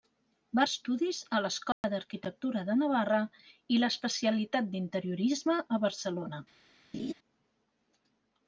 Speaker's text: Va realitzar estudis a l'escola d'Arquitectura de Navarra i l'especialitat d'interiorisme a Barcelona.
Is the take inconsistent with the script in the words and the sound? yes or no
yes